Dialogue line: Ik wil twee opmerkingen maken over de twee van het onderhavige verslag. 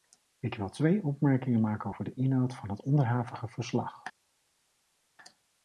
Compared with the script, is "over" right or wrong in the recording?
right